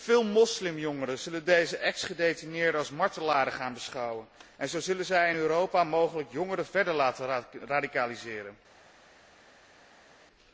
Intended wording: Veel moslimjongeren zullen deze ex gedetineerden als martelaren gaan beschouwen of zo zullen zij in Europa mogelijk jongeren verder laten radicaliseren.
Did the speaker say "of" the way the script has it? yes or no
no